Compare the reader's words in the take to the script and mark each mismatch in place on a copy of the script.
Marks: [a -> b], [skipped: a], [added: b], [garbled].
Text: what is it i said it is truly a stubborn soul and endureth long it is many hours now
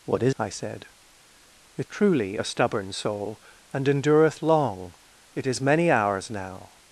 what is [skipped: it] i said it [skipped: is] truly a stubborn soul and endureth long it is many hours now